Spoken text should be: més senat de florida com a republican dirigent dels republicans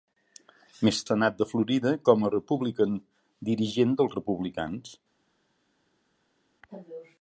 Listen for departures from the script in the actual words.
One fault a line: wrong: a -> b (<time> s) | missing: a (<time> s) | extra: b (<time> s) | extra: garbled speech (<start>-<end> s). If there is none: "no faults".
no faults